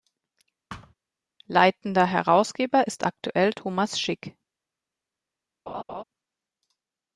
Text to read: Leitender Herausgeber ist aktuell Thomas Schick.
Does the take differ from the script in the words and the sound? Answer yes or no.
yes